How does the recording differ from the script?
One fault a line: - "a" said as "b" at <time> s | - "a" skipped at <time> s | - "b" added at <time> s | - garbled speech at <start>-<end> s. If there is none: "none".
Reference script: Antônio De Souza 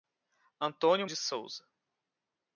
none